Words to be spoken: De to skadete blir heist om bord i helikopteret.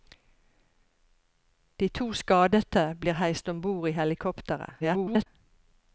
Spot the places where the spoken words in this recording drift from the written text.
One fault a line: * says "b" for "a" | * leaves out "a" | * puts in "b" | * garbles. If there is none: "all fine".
* garbles